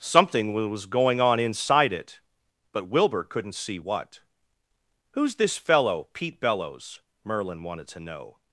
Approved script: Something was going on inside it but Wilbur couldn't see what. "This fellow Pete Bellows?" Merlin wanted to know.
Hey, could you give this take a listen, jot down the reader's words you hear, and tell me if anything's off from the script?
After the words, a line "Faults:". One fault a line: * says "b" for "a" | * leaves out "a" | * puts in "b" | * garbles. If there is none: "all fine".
Something was going on inside it but Wilbur couldn't see what. "Who's this fellow Pete Bellows?" Merlin wanted to know.
Faults:
* puts in "Who's"